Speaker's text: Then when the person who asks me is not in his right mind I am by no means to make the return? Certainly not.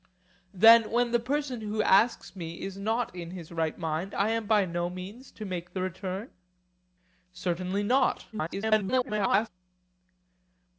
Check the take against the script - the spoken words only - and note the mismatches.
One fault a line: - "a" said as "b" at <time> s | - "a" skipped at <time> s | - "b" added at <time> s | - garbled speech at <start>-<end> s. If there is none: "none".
- garbled speech at 8.3-9.5 s